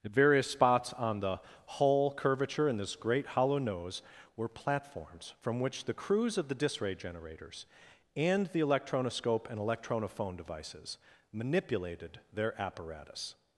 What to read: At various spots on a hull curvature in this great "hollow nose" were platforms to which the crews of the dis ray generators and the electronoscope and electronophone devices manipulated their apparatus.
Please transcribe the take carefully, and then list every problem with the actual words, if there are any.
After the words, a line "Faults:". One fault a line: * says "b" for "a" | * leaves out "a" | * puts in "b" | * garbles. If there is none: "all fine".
At various spots on the hull curvature in this great "hollow nose" were platforms from which the crews of the dis ray generators and the electronoscope and electronophone devices manipulated their apparatus.
Faults:
* says "the" for "a"
* says "from" for "to"